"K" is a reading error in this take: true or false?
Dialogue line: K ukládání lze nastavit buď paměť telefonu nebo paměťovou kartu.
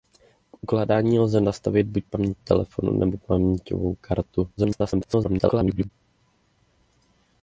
false